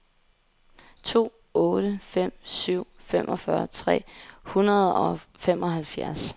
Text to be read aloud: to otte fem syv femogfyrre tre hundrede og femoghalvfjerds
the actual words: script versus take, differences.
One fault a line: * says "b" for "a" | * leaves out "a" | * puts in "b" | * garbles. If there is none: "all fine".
all fine